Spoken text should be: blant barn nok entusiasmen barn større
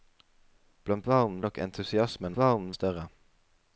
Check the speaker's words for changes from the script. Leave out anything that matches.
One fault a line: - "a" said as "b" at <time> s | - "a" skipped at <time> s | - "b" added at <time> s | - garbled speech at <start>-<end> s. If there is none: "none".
none